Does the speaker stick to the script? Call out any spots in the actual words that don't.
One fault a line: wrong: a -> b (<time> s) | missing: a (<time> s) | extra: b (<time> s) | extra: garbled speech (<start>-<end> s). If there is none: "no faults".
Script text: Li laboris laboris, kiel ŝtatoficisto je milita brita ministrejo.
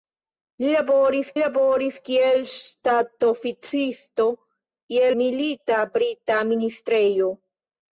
no faults